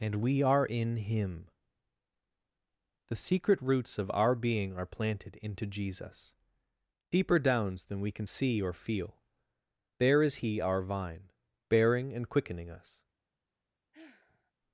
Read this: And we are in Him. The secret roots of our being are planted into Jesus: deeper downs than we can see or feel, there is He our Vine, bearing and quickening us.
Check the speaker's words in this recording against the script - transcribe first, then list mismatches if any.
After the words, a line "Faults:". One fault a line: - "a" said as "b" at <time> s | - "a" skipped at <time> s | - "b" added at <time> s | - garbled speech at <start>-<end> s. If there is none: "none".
And we are in Him. The secret roots of our being are planted into Jesus: deeper downs than we can see or feel, there is He our Vine, bearing and quickening us.
Faults:
none